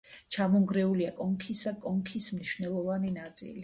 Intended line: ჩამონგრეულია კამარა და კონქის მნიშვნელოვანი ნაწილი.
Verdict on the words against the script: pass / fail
fail